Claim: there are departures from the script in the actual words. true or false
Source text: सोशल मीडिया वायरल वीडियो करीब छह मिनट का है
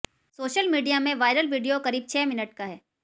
true